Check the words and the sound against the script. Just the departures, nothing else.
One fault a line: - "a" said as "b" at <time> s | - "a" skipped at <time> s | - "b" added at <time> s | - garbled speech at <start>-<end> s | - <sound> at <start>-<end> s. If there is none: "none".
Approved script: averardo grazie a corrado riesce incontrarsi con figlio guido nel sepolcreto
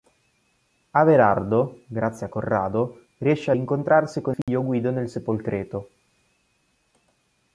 - dropout at 4.4-4.5 s